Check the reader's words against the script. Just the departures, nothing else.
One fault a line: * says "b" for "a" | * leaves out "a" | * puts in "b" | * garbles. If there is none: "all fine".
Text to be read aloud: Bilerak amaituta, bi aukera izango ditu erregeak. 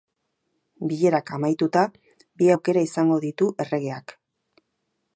all fine